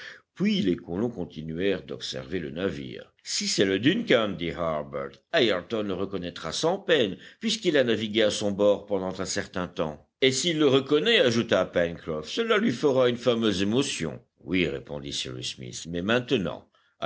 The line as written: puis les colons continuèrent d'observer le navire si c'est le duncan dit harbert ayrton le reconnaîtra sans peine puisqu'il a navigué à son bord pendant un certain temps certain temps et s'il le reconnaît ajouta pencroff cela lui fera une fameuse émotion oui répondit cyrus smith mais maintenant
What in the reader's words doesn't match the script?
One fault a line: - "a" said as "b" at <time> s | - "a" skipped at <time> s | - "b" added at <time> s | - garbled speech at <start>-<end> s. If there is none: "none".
- "certain temps" skipped at 10.1 s